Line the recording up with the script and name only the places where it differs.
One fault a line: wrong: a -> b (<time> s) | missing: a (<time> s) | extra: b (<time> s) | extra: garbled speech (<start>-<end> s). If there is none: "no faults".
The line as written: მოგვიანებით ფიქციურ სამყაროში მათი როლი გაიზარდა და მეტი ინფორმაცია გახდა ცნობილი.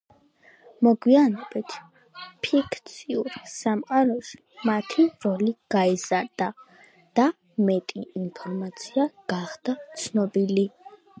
no faults